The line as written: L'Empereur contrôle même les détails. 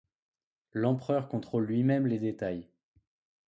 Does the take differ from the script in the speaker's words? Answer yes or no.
yes